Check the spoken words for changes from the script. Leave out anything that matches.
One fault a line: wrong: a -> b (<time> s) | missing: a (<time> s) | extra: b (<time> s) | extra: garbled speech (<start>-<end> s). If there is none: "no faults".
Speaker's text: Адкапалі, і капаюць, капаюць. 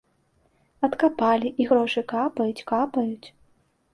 extra: грошы (1.7 s)